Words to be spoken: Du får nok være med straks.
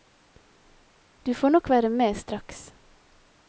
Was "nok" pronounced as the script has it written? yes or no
yes